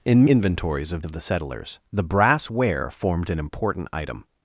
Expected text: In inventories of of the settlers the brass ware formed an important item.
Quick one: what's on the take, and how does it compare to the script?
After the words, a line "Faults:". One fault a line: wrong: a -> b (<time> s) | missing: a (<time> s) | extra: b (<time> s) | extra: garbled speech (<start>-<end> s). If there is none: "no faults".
In inventories of of the settlers the brass ware formed an important item.
Faults:
no faults